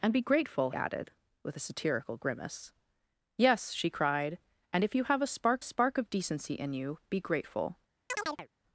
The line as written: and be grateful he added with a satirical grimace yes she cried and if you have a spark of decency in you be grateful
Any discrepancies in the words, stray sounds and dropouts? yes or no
yes